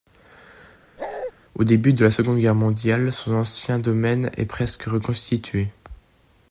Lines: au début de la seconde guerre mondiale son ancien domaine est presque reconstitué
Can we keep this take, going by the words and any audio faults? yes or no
no